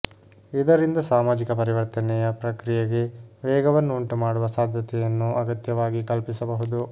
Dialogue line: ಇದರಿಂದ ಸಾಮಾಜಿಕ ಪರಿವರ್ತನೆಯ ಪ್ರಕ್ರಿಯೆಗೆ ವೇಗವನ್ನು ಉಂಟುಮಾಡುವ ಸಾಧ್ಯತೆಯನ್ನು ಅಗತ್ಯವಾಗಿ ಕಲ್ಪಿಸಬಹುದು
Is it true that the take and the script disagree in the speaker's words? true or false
false